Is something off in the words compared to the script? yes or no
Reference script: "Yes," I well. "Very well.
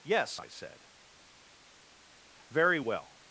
yes